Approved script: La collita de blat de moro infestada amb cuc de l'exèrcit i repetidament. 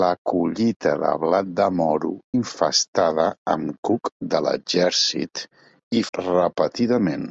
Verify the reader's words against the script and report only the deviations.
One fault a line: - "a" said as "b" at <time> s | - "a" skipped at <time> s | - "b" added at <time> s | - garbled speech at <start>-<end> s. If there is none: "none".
none